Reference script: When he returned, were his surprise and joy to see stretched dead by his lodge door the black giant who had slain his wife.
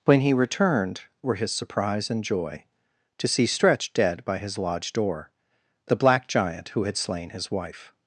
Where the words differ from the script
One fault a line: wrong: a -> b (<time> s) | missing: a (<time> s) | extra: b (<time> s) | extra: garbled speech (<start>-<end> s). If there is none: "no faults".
no faults